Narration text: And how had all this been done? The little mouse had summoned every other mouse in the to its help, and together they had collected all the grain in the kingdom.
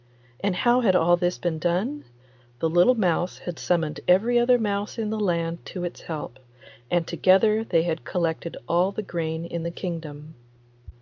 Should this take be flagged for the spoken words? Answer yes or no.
yes